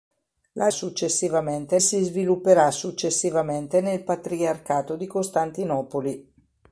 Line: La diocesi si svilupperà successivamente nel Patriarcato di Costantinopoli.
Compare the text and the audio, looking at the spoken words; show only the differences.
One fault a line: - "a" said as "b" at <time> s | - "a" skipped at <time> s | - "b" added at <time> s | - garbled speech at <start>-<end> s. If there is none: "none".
- "diocesi" said as "successivamente" at 0.7 s